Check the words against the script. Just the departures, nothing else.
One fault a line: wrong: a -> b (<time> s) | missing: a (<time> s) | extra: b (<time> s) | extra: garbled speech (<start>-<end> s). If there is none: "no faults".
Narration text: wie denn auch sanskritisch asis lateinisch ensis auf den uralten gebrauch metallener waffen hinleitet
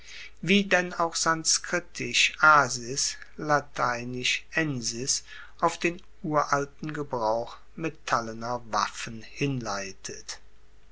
no faults